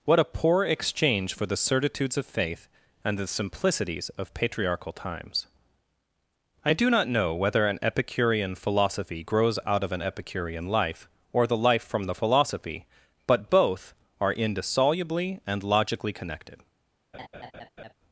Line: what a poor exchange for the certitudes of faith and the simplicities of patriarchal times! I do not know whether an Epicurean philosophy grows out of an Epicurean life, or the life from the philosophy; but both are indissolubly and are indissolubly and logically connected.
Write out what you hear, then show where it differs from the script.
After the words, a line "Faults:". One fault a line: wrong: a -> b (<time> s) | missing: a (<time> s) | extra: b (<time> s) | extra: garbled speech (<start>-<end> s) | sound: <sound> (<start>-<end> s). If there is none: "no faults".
what a poor exchange for the certitudes of faith and the simplicities of patriarchal times! I do not know whether an Epicurean philosophy grows out of an Epicurean life, or the life from the philosophy; but both are indissolubly and logically connected.
Faults:
missing: are indissolubly and (15.6 s)
sound: laugh (17.1-17.9 s)